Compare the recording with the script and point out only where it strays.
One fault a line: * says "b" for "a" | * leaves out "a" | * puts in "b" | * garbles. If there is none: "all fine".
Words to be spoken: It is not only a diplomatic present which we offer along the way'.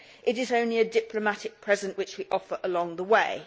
* leaves out "not"